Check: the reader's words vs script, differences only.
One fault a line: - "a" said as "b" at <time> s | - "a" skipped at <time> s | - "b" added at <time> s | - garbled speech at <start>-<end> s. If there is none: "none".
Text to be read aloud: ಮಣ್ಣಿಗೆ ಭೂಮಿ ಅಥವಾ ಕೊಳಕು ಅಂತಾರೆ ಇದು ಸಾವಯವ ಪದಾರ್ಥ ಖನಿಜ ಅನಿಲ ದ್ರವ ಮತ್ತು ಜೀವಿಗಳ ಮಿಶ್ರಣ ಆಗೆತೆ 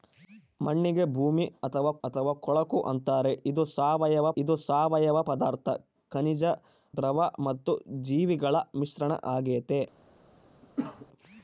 - "ಅಥವಾ" added at 2.0 s
- "ಇದು ಸಾವಯವ" added at 4.4 s
- "ಅನಿಲ" skipped at 6.4 s